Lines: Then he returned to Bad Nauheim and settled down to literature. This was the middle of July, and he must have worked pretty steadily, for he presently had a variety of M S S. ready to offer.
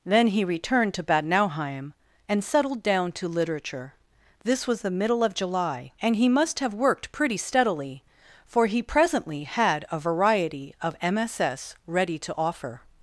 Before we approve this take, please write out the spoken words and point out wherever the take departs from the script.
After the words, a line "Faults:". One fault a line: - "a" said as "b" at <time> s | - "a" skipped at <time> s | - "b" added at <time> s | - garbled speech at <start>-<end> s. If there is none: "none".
Then he returned to Bad Nauheim and settled down to literature. This was the middle of July, and he must have worked pretty steadily, for he presently had a variety of M S S. ready to offer.
Faults:
none